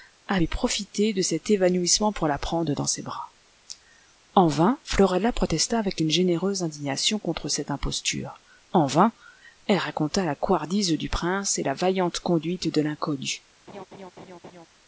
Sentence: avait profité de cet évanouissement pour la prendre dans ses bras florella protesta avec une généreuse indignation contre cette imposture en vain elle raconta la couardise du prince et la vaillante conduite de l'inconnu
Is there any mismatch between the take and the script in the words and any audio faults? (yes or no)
yes